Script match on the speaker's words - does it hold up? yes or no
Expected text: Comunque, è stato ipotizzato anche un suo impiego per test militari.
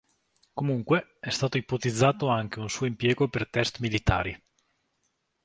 yes